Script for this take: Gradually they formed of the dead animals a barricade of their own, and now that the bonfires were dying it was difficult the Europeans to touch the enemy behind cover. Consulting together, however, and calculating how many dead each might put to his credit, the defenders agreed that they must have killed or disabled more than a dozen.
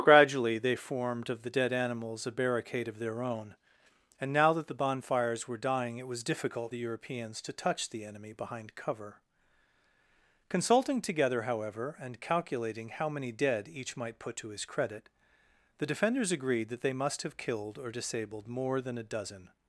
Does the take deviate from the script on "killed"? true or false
false